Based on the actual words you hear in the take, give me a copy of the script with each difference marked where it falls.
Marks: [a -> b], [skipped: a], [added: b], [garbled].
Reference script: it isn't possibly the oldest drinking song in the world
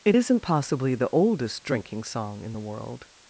it isn't possibly the oldest drinking song in the world